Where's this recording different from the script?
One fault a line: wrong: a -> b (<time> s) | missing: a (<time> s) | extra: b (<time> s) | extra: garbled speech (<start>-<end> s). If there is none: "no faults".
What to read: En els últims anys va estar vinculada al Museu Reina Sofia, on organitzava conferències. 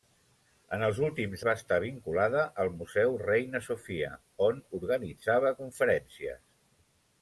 missing: anys (1.4 s)